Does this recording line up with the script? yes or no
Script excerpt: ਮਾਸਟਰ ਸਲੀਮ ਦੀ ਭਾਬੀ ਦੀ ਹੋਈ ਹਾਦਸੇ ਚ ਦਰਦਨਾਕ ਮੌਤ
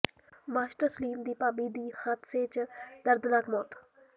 no